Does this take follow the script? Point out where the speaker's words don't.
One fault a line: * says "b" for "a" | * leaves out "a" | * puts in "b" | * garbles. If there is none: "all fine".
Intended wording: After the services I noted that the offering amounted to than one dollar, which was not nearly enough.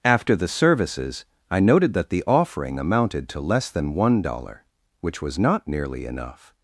* puts in "less"